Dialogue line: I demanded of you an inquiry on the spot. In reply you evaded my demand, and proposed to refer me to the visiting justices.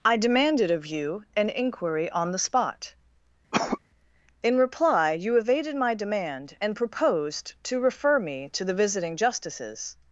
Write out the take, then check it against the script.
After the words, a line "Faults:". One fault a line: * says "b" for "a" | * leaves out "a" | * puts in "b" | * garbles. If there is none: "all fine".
I demanded of you an inquiry on the spot. In reply you evaded my demand, and proposed to refer me to the visiting justices.
Faults:
all fine